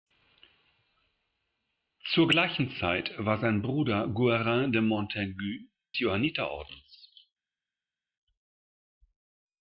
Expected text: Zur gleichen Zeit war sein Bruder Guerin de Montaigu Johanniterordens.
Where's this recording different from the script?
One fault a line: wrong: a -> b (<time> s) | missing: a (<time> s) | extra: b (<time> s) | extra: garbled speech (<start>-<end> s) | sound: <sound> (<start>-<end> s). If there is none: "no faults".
no faults